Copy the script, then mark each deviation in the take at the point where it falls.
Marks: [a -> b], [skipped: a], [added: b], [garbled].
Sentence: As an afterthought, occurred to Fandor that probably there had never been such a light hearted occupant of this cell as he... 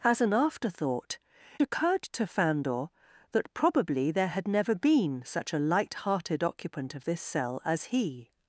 As an afterthought, occurred to Fandor that probably there had never been such a light hearted occupant of this cell as he...